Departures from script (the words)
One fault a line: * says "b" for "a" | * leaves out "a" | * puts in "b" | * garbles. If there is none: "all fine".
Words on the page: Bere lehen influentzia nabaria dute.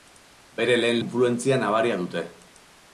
all fine